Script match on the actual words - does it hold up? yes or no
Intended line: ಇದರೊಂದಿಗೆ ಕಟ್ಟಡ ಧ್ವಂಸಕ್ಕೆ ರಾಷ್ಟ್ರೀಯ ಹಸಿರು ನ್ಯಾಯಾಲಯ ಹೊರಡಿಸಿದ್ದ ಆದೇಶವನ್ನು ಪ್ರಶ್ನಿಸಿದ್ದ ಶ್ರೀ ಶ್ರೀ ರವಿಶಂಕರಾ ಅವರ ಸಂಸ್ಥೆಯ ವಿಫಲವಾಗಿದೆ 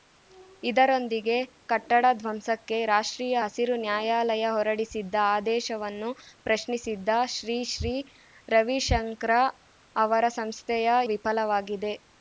yes